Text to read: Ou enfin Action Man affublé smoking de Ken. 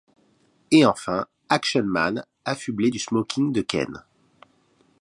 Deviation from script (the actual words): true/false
true